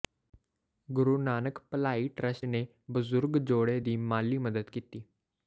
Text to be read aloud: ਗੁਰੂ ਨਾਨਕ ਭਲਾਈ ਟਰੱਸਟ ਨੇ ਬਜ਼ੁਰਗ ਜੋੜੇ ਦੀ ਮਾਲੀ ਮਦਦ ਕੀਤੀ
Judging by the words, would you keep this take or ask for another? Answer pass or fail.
pass